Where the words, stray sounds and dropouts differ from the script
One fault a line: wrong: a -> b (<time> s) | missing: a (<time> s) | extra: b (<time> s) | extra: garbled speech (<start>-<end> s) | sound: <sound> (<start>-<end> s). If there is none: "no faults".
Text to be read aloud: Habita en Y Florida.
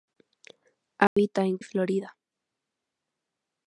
sound: dropout (1.1-1.2 s)